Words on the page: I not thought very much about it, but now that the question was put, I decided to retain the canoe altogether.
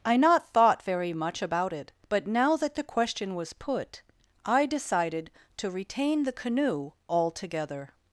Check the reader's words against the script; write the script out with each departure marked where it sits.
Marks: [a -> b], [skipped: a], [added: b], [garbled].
I not thought very much about it, but now that the question was put, I decided to retain the canoe altogether.